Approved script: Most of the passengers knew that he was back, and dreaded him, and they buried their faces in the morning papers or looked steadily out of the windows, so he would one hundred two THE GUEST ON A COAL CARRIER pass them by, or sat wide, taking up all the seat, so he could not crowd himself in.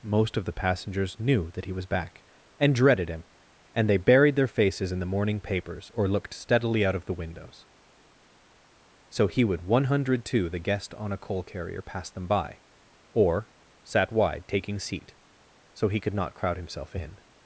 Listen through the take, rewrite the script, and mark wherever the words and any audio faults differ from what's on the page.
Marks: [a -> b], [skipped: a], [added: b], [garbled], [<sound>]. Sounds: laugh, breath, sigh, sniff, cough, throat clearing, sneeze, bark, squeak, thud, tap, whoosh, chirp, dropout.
Most of the passengers knew that he was back, and dreaded him, and they buried their faces in the morning papers or looked steadily out of the windows, so he would one hundred two THE GUEST ON A COAL CARRIER pass them by, or sat wide, taking [skipped: up all the] seat, so he could not crowd himself in.